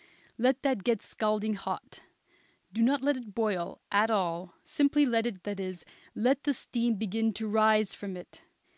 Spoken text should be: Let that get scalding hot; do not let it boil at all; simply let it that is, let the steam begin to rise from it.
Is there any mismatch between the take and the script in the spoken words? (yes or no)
no